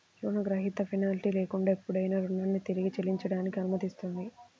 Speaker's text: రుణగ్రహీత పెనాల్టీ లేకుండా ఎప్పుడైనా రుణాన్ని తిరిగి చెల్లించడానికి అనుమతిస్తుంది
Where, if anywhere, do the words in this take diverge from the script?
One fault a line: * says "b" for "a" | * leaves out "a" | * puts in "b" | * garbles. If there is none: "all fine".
all fine